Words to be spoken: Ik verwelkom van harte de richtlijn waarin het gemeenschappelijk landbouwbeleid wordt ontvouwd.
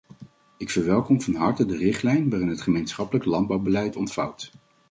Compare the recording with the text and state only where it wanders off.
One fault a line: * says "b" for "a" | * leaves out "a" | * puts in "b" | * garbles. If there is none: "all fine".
* leaves out "wordt"